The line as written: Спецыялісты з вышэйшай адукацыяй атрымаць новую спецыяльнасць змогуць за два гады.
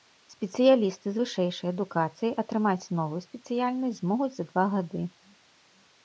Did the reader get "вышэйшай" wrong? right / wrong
right